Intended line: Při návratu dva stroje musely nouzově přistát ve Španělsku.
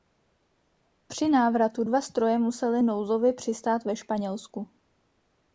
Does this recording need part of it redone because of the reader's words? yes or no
no